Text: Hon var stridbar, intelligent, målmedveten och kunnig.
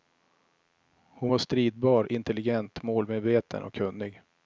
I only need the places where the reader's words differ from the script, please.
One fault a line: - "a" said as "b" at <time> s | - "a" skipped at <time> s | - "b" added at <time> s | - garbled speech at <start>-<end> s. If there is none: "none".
none